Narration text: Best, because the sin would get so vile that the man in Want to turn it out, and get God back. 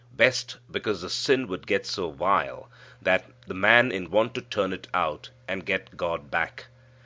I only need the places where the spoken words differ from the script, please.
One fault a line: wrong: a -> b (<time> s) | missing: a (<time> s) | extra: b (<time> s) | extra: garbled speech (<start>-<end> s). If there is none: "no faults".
no faults